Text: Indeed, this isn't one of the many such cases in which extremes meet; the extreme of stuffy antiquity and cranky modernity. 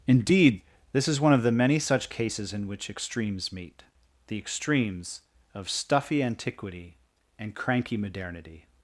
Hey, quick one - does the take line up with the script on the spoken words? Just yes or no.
no